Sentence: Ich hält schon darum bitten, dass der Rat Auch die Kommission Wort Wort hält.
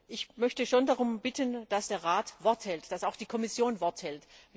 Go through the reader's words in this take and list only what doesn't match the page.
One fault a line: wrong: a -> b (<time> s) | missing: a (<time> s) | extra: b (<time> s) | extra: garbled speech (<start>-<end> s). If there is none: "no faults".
wrong: hält -> möchte (0.4 s)
extra: Wort hält dass (2.4 s)
missing: Wort (4.0 s)